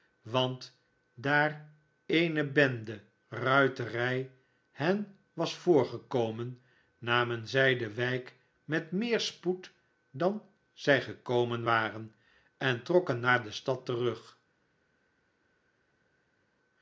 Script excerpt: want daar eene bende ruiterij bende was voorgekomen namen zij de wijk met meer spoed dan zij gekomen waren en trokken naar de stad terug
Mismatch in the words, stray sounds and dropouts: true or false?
true